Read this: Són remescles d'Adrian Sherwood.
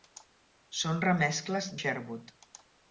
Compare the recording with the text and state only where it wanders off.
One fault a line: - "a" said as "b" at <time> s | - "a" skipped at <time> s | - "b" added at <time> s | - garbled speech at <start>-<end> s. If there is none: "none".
- "d'Adrian" skipped at 1.7 s